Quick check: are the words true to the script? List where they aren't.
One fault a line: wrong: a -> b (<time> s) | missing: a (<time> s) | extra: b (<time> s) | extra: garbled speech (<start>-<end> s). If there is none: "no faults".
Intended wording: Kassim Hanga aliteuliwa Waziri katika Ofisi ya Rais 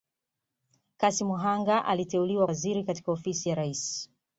no faults